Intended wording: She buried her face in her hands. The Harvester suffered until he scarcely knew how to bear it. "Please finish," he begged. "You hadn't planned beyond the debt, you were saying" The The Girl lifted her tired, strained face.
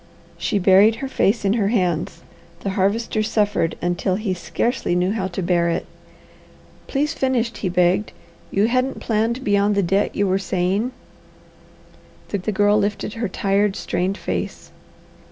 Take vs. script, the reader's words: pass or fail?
pass